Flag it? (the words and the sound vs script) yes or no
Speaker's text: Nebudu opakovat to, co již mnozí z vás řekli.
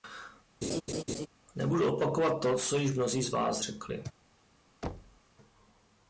yes